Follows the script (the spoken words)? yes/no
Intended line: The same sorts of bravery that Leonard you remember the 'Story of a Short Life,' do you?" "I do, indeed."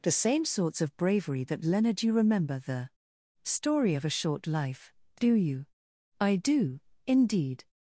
yes